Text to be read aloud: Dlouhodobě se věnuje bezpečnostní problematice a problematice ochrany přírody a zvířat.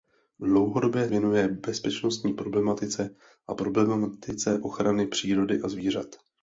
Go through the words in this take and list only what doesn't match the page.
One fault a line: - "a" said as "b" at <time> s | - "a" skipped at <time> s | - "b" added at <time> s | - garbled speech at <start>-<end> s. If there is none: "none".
- "se" skipped at 1.1 s